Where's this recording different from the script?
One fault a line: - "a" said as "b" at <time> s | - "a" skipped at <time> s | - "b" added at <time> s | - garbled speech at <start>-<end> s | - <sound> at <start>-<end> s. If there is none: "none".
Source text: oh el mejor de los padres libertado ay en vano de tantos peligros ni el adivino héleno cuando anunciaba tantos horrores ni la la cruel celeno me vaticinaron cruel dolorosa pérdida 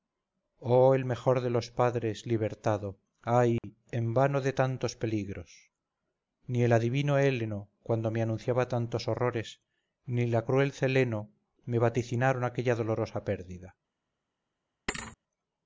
- dropout at 3.6-3.6 s
- "me" added at 8.1 s
- "la" skipped at 10.4 s
- "cruel" said as "aquella" at 12.4 s
- thud at 14.9-15.2 s